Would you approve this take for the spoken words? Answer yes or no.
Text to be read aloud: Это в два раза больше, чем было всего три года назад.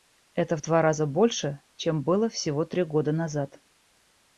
yes